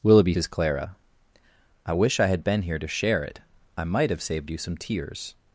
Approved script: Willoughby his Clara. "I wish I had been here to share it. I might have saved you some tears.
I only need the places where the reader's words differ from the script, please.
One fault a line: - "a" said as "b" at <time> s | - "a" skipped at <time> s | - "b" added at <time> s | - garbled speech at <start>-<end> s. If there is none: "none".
none